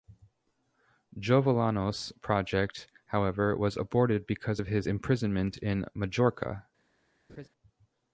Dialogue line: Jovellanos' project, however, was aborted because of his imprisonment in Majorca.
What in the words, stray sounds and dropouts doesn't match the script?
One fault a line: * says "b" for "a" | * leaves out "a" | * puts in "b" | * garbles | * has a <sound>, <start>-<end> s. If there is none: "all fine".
* has a laugh, 7.3-7.5 s